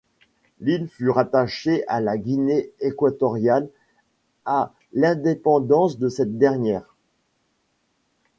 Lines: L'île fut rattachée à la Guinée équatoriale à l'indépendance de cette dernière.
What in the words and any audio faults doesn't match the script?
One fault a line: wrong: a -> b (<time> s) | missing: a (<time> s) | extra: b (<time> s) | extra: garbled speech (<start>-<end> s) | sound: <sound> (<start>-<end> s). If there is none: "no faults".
no faults